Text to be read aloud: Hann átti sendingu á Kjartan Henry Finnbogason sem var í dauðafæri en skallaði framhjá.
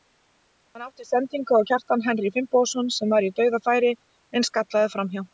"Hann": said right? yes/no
yes